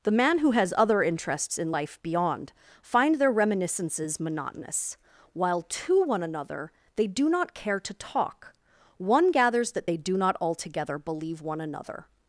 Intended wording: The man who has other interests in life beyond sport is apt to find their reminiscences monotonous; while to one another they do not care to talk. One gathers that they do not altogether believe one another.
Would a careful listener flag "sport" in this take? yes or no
yes